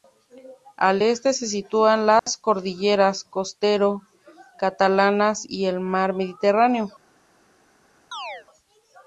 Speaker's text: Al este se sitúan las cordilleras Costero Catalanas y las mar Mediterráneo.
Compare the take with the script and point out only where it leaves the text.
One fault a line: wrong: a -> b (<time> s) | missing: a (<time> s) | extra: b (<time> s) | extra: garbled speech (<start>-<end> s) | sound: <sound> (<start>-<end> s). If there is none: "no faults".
sound: dropout (2.2-2.3 s)
wrong: las -> el (5.7 s)
sound: chirp (8.1-8.5 s)